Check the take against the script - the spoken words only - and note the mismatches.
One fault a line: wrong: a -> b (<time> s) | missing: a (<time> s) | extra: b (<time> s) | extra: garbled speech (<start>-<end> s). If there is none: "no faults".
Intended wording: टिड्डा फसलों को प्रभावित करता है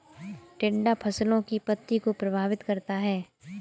extra: की पत्ती (1.4 s)